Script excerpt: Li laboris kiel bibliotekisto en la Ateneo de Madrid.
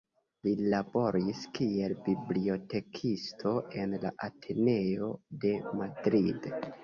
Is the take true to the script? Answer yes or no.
yes